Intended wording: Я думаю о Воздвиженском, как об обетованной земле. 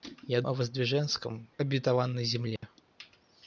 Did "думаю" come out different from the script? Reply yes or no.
yes